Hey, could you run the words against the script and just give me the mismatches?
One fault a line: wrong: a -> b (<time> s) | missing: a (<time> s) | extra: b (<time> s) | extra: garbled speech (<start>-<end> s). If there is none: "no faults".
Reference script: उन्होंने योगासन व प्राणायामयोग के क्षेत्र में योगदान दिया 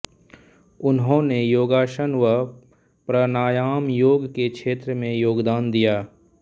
no faults